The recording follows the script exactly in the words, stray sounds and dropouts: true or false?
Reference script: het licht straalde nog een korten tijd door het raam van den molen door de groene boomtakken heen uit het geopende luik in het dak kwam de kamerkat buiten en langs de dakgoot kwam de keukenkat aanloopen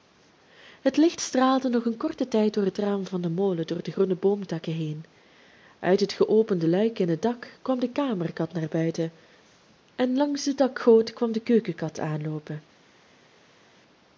false